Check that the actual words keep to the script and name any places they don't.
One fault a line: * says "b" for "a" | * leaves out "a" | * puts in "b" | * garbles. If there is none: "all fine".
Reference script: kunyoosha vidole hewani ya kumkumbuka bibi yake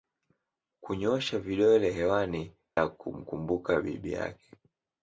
all fine